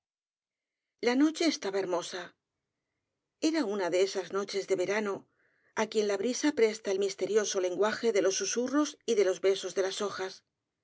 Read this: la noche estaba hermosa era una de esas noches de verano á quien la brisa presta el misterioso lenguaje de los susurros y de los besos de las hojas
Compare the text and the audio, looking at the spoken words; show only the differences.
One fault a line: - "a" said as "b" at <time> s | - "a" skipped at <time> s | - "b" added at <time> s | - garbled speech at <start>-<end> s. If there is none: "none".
none